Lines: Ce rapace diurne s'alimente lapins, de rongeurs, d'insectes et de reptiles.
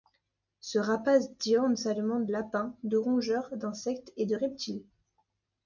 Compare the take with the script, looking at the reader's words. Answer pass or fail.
pass